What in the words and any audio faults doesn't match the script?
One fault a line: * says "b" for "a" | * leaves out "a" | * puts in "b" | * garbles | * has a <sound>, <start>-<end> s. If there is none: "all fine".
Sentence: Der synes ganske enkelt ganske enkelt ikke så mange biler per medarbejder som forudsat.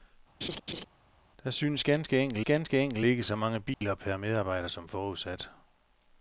* has a laugh, 0.4-0.8 s
* has a dropout, 3.7-3.8 s